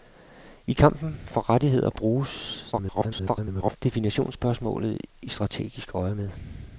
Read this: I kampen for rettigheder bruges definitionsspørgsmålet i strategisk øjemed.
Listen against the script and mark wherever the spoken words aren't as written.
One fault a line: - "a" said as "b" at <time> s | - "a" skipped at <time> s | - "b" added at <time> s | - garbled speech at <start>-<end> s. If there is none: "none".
- garbled speech at 2.7-3.8 s